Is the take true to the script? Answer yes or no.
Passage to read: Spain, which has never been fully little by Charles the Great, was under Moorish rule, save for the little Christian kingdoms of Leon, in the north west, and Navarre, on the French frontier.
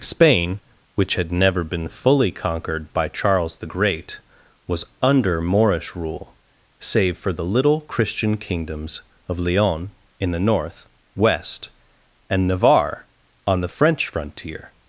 no